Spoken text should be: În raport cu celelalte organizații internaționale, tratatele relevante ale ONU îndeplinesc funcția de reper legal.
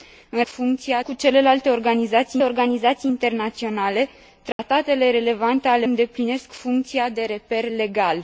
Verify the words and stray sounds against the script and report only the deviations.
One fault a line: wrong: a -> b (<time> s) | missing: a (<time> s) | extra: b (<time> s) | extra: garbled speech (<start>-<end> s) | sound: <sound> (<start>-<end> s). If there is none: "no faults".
wrong: raport -> funcția (0.5 s)
extra: organizații (2.4 s)
sound: dropout (4.5-4.6 s)
missing: ONU (5.9 s)